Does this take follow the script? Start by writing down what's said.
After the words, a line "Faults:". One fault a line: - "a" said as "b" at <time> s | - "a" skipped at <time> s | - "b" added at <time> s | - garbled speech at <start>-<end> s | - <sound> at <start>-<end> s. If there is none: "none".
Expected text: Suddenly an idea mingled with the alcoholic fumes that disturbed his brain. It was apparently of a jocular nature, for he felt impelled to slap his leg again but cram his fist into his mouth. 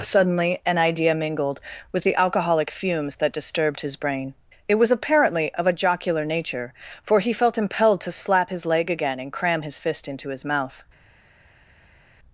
Suddenly an idea mingled with the alcoholic fumes that disturbed his brain. It was apparently of a jocular nature, for he felt impelled to slap his leg again and cram his fist into his mouth.
Faults:
- "but" said as "and" at 9.2 s